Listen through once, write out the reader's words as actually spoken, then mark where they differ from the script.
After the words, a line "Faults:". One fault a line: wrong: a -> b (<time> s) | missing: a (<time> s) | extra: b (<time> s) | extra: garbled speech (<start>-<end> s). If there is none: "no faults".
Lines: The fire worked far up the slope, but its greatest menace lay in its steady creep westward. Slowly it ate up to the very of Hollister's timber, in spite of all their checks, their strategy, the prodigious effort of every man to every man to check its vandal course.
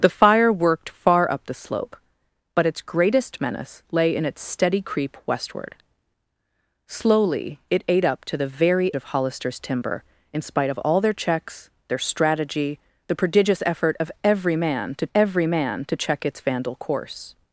The fire worked far up the slope, but its greatest menace lay in its steady creep westward. Slowly it ate up to the very of Hollister's timber, in spite of all their checks, their strategy, the prodigious effort of every man to every man to check its vandal course.
Faults:
no faults